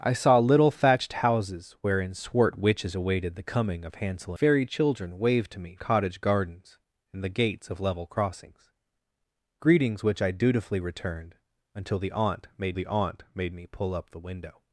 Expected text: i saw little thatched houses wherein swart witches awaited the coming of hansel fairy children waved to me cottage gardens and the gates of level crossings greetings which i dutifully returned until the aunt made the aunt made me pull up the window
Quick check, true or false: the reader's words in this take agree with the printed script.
true